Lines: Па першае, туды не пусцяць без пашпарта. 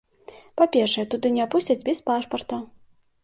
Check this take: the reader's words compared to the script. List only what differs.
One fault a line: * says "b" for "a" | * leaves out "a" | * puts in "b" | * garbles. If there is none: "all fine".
all fine